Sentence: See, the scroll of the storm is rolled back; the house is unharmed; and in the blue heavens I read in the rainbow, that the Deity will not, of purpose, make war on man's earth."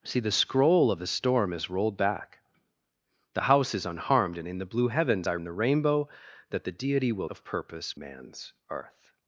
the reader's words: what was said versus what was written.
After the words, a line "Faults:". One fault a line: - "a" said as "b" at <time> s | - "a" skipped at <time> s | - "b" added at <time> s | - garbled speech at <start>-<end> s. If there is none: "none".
See, the scroll of the storm is rolled back; the house is unharmed; and in the blue heavens I in the rainbow, that the Deity will of purpose, man's earth."
Faults:
- "read" skipped at 5.4 s
- "not" skipped at 7.3 s
- "make war on" skipped at 8.0 s